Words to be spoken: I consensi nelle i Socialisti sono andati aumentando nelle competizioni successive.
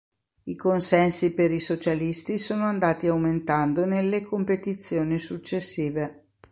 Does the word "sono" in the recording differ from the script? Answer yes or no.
no